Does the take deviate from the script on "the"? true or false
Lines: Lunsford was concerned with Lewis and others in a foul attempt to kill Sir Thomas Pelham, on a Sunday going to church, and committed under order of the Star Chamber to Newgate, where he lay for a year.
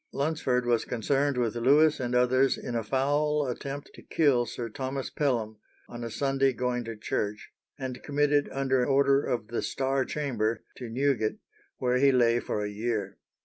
false